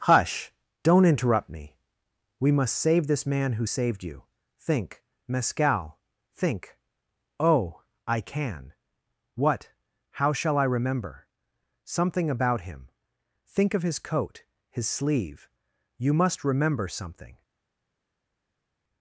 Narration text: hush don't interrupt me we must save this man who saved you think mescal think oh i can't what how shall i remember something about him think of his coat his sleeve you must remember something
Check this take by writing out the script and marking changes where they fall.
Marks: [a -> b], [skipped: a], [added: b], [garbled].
hush don't interrupt me we must save this man who saved you think mescal think oh i [can't -> can] what how shall i remember something about him think of his coat his sleeve you must remember something